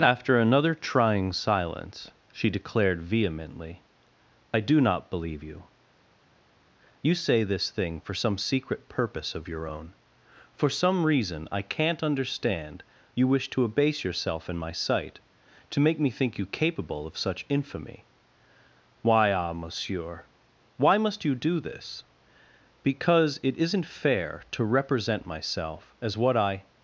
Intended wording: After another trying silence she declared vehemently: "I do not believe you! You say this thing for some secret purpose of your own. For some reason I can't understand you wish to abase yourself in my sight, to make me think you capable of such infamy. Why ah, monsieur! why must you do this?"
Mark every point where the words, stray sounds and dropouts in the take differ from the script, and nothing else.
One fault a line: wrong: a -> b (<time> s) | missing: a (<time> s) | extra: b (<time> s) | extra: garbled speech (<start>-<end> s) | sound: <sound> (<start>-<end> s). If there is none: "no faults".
extra: Because it isn't fair to represent myself as what I (22.8 s)